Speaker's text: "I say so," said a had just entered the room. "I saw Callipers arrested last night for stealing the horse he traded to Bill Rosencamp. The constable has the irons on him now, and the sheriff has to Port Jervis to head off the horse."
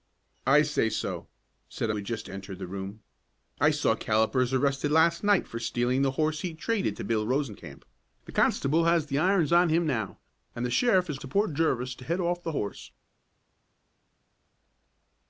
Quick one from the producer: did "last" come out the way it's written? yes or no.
yes